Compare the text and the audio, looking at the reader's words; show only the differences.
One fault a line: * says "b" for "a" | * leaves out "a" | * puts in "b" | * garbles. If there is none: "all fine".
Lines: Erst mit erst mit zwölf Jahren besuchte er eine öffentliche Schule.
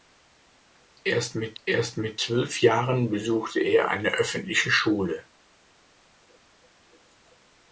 all fine